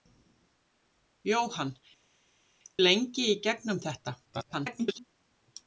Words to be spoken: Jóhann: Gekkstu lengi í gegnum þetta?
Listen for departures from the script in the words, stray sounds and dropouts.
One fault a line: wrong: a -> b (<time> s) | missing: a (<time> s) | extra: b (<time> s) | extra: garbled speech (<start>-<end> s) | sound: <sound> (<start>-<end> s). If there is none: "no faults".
missing: Gekkstu (1.7 s)
extra: garbled speech (4.3-5.0 s)